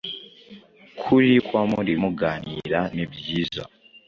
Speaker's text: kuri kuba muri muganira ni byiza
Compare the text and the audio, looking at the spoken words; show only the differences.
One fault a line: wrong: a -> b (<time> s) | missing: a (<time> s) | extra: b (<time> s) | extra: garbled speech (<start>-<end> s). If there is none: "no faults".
no faults